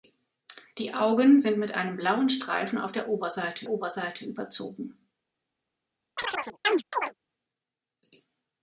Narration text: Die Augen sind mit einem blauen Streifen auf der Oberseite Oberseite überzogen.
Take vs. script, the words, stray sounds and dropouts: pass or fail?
fail